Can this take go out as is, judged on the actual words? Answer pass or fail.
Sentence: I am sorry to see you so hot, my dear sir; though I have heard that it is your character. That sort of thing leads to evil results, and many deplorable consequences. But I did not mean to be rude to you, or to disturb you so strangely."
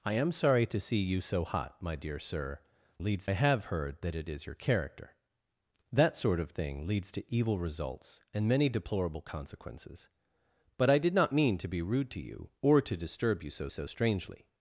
fail